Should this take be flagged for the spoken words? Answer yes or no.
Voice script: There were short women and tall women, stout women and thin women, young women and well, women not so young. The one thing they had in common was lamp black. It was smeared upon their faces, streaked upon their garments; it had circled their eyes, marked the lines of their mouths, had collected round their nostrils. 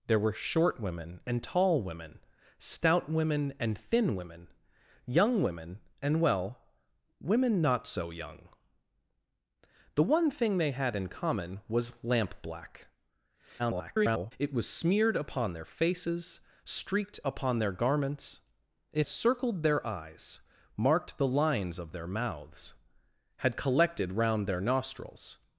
yes